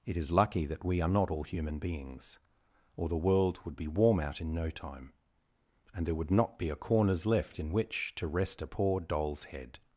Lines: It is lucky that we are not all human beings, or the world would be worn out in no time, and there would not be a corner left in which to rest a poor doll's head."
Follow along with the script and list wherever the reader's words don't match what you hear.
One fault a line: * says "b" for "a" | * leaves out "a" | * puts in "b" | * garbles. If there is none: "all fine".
* says "warm" for "worn"
* says "corners" for "corner"